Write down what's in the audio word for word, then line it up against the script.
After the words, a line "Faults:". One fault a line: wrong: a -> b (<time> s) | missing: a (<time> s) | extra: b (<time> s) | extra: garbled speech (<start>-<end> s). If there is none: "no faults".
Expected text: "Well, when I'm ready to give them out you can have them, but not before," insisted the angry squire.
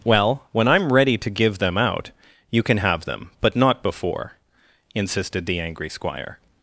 "Well, when I'm ready to give them out you can have them, but not before," insisted the angry squire.
Faults:
no faults